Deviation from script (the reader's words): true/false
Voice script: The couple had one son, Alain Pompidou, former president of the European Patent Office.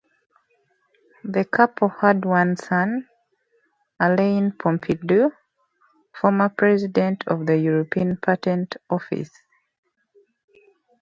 false